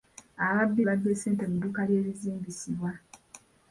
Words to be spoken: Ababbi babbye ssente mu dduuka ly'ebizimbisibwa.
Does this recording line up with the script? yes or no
yes